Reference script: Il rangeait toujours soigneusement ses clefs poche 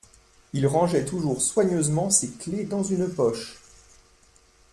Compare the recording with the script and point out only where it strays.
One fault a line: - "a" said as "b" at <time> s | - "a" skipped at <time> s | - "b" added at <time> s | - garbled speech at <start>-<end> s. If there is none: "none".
- "dans une" added at 2.7 s